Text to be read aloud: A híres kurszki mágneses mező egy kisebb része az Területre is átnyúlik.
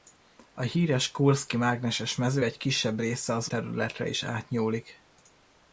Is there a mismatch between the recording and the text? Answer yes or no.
no